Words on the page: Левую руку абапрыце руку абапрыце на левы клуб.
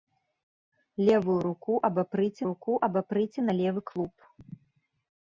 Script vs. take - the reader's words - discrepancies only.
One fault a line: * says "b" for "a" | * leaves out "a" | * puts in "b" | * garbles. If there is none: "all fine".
all fine